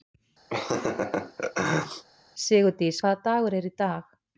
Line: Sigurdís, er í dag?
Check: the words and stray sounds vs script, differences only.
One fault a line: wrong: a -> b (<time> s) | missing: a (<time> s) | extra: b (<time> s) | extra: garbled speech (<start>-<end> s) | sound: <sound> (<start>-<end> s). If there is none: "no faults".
sound: laugh (0.5-2.0 s)
extra: hvaða dagur (3.0 s)